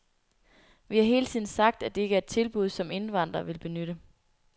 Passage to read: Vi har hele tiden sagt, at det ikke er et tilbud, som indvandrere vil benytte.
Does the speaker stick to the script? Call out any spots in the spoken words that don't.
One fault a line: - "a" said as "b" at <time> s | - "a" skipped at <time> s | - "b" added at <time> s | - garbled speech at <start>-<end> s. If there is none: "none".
none